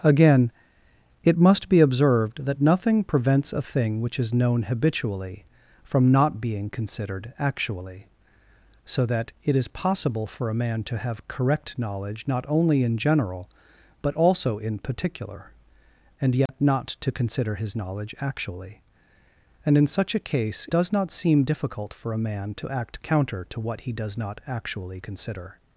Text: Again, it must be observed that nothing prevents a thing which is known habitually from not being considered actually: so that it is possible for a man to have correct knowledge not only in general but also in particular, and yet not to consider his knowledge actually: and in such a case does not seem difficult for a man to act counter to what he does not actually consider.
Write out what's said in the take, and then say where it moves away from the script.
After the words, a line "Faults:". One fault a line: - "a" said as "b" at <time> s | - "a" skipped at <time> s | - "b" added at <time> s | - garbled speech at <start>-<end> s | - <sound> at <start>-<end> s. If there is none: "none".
Again, it must be observed that nothing prevents a thing which is known habitually from not being considered actually: so that it is possible for a man to have correct knowledge not only in general but also in particular, and yet not to consider his knowledge actually: and in such a case does not seem difficult for a man to act counter to what he does not actually consider.
Faults:
- dropout at 16.5-16.5 s